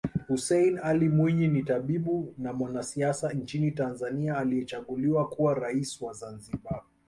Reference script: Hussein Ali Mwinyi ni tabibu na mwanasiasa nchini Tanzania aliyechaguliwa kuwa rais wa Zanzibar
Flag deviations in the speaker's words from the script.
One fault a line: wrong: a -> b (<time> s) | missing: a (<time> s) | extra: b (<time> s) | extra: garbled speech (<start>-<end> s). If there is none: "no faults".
no faults